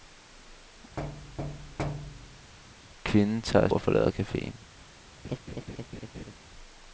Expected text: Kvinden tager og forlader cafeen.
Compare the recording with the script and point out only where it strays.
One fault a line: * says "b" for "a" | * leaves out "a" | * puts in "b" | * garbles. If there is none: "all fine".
all fine